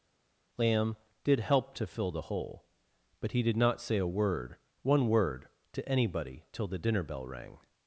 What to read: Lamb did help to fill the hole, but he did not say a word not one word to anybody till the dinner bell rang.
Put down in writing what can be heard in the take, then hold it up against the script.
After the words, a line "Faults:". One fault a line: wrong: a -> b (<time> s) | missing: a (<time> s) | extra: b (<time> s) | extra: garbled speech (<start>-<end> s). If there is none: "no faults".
Lamb did help to fill the hole, but he did not say a word one word to anybody till the dinner bell rang.
Faults:
missing: not (4.6 s)